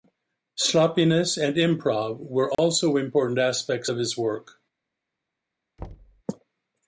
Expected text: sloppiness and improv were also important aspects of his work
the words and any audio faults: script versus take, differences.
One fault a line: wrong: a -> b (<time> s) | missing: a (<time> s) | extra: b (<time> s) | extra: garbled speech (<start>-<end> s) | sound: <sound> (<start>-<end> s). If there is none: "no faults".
sound: dropout (2.5-2.6 s)
sound: thud (5.8-6.2 s)